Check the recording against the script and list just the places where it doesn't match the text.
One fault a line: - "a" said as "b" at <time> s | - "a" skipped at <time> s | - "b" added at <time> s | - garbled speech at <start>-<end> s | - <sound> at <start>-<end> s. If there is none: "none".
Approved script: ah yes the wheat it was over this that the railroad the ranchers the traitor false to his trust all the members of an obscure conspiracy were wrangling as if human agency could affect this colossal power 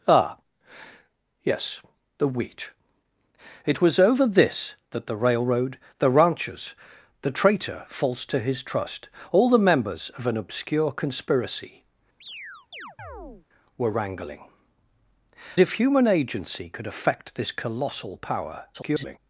- chirp at 12.2-13.5 s
- "as" skipped at 14.5 s
- garbled speech at 18.7-19.2 s